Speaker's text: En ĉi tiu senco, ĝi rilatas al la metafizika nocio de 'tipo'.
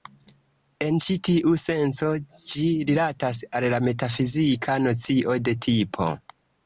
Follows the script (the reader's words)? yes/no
yes